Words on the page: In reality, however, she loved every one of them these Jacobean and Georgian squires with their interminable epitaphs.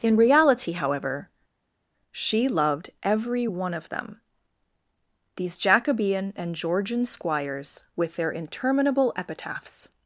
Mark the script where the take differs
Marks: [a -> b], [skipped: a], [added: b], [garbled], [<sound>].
In reality, however, she loved every one of them these Jacobean and Georgian squires with their interminable epitaphs.